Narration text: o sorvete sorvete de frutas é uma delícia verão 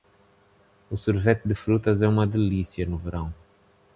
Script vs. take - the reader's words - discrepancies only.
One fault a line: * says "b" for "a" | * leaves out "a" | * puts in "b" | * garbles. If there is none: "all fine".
* leaves out "sorvete"
* puts in "no"